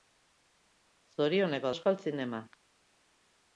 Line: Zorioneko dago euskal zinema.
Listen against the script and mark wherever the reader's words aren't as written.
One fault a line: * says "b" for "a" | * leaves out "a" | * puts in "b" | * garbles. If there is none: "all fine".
* leaves out "dago"